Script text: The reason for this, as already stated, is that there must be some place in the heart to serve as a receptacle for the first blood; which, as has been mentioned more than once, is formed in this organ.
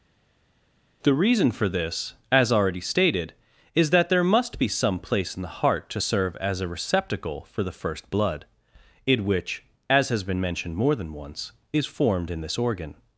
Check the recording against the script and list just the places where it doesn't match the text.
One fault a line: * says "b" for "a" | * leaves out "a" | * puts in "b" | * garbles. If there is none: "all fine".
* puts in "in"